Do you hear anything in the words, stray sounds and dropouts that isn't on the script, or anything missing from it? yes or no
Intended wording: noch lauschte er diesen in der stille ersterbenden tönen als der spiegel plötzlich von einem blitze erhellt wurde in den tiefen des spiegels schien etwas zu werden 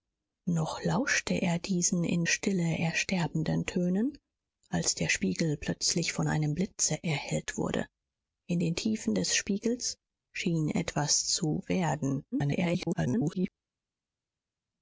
yes